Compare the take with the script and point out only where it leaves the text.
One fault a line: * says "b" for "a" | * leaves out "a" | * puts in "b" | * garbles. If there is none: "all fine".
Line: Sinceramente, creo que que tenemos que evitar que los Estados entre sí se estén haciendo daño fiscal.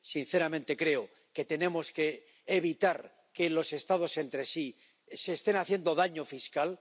* leaves out "que"